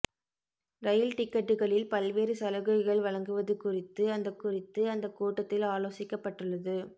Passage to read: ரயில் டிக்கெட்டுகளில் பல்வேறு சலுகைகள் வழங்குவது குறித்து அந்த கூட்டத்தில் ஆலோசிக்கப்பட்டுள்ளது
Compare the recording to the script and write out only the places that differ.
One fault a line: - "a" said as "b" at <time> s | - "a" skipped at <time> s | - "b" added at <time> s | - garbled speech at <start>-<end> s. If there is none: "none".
- "குறித்து அந்த" added at 4.4 s